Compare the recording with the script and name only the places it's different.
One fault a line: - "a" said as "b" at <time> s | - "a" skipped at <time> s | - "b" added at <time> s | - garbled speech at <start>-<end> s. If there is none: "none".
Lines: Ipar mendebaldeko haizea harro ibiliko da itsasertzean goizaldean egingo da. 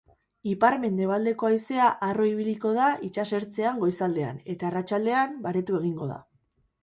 - "eta arratsaldean baretu" added at 4.5 s